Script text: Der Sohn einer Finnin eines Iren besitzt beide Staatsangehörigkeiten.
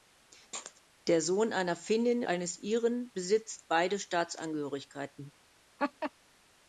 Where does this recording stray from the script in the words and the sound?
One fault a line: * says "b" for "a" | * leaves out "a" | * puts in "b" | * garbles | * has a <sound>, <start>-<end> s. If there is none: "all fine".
* has a laugh, 5.8-6.1 s